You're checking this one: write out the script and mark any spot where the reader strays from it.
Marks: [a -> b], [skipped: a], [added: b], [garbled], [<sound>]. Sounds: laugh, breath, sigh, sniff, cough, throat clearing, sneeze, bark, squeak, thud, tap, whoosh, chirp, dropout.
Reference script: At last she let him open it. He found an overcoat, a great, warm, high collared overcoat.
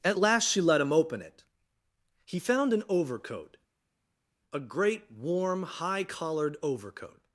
At last she let him open it. He found an overcoat, a great, warm, high collared overcoat.